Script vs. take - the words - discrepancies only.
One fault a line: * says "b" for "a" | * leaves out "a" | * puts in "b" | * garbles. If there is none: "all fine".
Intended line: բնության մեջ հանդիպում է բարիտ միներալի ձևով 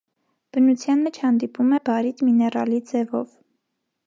all fine